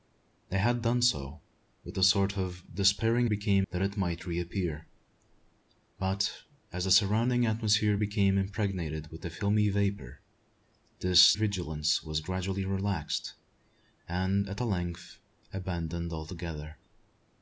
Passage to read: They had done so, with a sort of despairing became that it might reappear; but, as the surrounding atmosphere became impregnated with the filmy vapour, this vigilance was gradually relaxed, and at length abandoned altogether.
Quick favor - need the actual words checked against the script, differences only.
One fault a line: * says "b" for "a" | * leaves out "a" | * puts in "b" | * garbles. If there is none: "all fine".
all fine